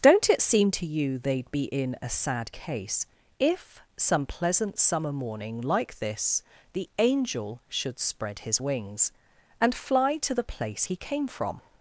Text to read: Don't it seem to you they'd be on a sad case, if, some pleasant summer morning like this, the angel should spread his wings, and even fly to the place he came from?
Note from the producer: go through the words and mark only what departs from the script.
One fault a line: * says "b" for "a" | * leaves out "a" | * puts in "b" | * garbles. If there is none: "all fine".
* says "in" for "on"
* leaves out "even"